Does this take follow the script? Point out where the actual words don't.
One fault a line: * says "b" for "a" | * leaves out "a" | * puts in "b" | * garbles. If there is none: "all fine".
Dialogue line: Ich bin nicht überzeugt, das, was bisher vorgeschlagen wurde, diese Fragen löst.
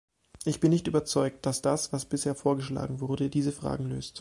* puts in "dass"